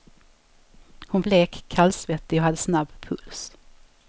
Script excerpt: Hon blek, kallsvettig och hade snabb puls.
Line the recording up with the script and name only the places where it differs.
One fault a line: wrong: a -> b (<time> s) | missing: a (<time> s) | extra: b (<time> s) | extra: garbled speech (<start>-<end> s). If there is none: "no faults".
no faults